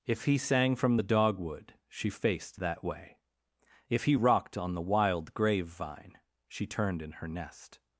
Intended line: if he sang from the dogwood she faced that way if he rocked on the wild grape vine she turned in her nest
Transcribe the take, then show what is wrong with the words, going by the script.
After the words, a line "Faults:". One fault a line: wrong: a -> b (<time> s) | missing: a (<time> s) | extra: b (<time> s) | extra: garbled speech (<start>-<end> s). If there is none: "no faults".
if he sang from the dogwood she faced that way if he rocked on the wild grave vine she turned in her nest
Faults:
wrong: grape -> grave (5.3 s)